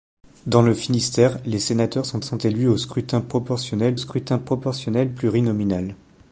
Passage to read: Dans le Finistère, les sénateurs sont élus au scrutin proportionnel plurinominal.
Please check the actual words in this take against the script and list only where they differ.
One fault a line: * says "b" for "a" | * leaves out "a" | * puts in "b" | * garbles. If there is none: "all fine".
* puts in "sont"
* puts in "scrutin proportionnel"